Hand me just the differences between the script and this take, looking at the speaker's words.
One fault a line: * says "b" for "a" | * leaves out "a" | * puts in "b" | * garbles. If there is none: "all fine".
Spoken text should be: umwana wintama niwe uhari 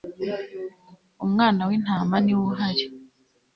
all fine